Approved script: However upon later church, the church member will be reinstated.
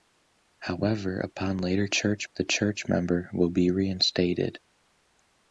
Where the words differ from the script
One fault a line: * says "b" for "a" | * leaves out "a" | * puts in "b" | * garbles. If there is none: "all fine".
all fine